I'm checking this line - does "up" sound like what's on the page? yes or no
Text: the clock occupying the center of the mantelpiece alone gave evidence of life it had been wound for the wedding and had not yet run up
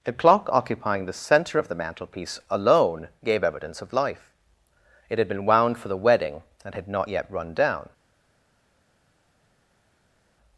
no